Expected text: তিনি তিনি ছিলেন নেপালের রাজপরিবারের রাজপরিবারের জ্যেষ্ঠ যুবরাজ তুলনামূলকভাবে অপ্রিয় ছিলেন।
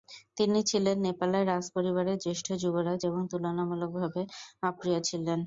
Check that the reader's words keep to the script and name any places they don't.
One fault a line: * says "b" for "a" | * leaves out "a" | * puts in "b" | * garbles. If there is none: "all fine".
* leaves out "তিনি"
* leaves out "রাজপরিবারের"
* puts in "এবং"